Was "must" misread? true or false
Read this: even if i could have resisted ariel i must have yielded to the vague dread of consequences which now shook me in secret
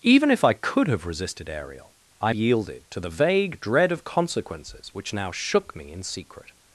true